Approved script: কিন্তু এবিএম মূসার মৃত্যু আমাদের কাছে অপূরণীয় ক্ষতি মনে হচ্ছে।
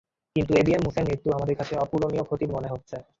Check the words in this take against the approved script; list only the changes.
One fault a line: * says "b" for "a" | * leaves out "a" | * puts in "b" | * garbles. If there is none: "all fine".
all fine